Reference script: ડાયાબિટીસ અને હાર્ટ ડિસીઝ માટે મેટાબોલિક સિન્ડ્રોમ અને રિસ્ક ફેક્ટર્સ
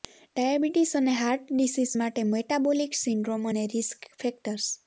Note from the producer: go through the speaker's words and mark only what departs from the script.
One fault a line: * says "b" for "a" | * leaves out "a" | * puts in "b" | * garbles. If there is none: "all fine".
all fine